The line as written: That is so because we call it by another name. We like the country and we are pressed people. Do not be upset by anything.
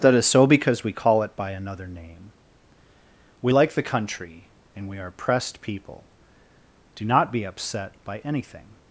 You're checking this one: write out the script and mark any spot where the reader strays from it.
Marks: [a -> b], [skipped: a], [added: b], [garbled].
That is so because we call it by another name. We like the country and we are pressed people. Do not be upset by anything.